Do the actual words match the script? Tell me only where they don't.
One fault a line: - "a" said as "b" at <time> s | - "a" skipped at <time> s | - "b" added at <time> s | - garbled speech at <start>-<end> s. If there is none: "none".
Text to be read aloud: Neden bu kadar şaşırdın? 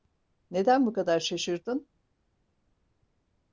none